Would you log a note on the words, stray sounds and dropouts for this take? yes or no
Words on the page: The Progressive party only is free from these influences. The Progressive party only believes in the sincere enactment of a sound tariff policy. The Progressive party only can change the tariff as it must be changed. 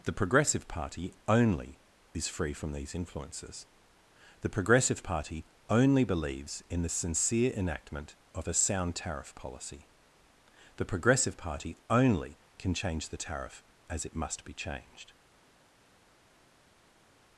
no